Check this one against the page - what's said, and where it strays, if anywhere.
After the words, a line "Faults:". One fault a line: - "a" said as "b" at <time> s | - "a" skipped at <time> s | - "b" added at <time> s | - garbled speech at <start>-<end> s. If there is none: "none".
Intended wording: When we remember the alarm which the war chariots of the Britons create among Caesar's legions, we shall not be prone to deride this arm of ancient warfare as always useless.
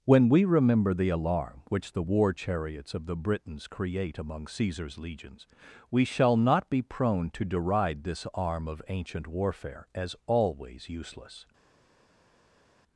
When we remember the alarm which the war chariots of the Britons create among Caesar's legions, we shall not be prone to deride this arm of ancient warfare as always useless.
Faults:
none